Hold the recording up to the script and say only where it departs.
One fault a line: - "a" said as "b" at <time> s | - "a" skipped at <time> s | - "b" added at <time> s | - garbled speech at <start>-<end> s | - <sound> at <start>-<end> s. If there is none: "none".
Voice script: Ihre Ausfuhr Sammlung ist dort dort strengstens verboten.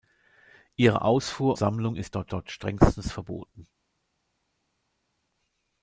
none